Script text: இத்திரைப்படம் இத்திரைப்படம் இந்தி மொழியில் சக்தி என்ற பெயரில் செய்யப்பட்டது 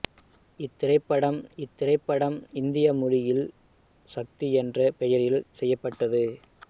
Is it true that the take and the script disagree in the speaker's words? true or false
false